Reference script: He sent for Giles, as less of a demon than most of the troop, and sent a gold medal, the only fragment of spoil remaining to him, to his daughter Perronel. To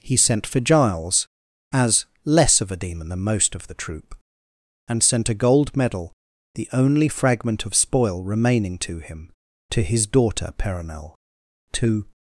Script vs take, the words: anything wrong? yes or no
no